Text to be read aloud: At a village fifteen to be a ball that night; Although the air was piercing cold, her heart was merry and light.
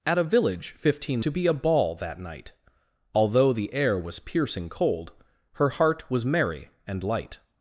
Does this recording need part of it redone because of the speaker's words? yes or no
no